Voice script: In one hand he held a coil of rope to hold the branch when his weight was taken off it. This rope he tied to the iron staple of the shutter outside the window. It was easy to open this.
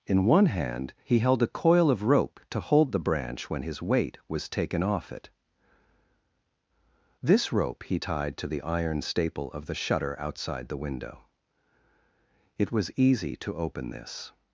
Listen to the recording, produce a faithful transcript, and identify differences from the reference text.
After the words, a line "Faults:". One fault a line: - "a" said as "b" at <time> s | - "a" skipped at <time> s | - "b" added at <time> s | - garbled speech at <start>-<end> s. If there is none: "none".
In one hand he held a coil of rope to hold the branch when his weight was taken off it. This rope he tied to the iron staple of the shutter outside the window. It was easy to open this.
Faults:
none